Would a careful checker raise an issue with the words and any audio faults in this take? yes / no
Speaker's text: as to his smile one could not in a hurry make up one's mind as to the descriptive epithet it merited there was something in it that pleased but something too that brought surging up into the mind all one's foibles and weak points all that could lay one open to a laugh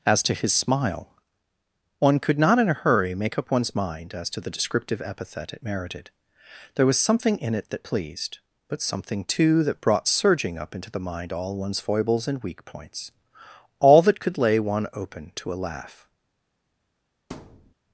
yes